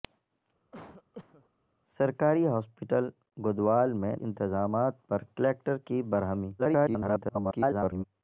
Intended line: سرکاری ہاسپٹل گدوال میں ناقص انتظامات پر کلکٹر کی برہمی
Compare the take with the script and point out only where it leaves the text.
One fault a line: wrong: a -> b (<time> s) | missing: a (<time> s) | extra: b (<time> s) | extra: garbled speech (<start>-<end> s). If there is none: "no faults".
missing: ناقص (4.1 s)
extra: garbled speech (6.6-8.0 s)